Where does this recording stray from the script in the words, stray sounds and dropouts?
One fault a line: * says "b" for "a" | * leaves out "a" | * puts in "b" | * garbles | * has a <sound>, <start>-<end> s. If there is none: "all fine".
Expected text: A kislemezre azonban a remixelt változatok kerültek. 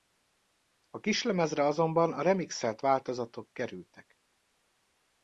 all fine